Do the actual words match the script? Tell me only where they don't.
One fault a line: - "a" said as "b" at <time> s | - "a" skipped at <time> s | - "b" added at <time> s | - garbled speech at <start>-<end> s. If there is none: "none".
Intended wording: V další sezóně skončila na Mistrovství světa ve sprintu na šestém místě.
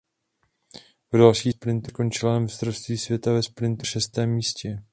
- "sezóně" said as "sprintu" at 1.5 s
- "na" skipped at 3.9 s